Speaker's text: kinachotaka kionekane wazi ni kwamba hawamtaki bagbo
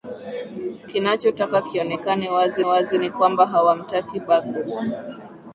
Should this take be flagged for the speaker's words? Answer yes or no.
yes